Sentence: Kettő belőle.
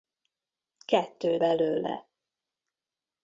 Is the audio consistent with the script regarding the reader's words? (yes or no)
yes